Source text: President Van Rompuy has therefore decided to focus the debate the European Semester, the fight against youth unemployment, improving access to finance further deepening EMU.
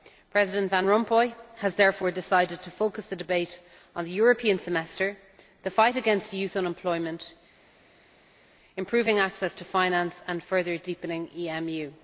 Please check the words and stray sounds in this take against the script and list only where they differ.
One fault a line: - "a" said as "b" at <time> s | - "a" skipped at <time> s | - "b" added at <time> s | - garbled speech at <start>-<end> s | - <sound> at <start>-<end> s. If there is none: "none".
- "on" added at 3.9 s
- "and" added at 10.3 s